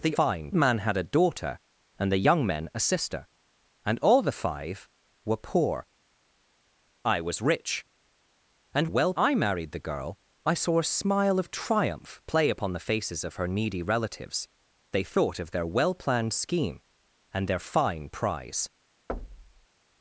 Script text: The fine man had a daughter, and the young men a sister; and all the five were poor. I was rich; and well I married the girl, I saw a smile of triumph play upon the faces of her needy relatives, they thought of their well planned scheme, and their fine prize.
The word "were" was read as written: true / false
true